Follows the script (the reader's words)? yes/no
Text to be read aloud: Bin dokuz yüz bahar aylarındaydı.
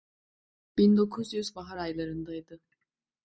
yes